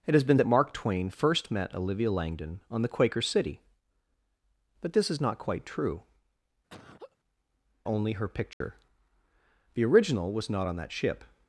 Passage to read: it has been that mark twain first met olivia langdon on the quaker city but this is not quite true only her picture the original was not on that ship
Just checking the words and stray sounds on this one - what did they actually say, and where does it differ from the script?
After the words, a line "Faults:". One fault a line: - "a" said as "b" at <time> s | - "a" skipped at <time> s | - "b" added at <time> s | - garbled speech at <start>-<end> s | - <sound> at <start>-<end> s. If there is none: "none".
it has been that mark twain first met olivia langdon on the quaker city but this is not quite true only her picture the original was not on that ship
Faults:
- laugh at 6.7-7.2 s
- dropout at 8.5-8.6 s